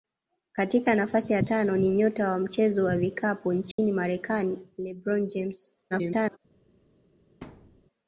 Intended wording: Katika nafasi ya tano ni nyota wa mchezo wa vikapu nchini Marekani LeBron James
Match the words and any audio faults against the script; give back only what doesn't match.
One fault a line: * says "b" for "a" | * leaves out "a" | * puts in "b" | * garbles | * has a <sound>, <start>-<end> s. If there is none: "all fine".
* has a dropout, 3.7-3.8 s
* garbles
* has a thud, 7.4-7.9 s